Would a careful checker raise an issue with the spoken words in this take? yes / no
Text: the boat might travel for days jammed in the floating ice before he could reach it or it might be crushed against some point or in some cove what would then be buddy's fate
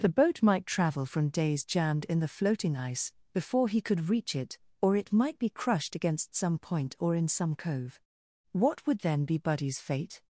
yes